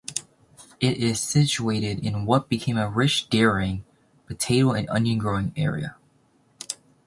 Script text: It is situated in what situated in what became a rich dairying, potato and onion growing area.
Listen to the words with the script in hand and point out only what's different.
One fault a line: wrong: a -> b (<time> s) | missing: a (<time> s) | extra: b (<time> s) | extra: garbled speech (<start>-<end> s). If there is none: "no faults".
missing: situated in what (2.5 s)